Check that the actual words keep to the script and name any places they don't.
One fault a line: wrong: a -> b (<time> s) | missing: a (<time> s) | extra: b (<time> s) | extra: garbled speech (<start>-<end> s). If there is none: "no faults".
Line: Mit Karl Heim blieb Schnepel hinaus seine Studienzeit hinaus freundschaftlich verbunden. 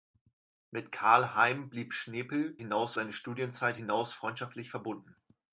no faults